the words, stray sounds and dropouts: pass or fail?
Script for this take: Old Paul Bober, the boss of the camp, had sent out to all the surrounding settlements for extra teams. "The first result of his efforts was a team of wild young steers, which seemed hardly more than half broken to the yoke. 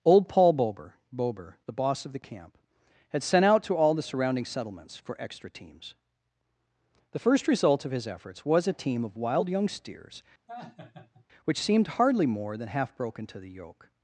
fail